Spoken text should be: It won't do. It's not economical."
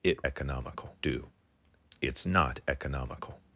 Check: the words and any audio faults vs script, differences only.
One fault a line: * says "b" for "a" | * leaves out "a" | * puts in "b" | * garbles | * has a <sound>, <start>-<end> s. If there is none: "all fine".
* says "economical" for "won't"